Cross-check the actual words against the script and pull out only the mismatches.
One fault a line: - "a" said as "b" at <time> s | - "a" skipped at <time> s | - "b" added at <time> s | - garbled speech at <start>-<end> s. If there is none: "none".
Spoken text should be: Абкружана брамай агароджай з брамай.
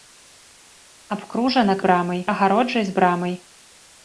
none